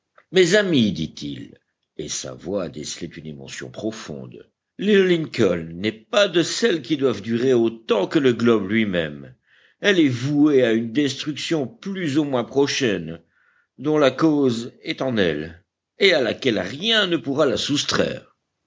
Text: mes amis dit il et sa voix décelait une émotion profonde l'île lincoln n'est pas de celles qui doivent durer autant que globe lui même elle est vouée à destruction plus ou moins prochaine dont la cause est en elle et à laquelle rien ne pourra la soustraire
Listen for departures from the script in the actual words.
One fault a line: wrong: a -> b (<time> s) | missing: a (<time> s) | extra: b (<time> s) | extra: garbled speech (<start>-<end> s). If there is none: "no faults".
extra: le (8.2 s)
extra: une (10.7 s)